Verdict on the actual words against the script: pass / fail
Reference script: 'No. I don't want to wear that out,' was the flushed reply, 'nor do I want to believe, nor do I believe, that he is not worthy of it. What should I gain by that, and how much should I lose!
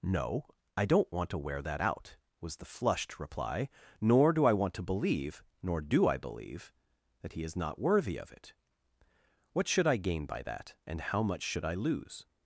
pass